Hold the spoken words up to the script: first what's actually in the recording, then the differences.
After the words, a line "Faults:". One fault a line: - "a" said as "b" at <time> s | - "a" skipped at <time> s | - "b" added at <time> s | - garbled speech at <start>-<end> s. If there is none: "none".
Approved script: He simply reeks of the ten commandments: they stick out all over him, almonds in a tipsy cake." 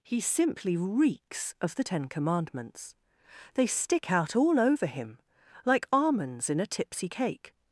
He simply reeks of the ten commandments: they stick out all over him, like almonds in a tipsy cake."
Faults:
- "like" added at 5.7 s